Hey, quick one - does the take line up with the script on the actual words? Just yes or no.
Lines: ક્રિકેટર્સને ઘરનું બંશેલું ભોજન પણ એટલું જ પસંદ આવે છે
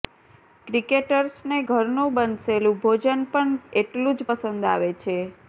yes